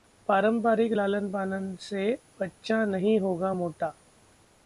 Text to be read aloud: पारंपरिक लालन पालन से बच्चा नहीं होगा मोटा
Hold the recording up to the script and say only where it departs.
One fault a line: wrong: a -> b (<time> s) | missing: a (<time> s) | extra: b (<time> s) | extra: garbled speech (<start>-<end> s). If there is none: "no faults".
no faults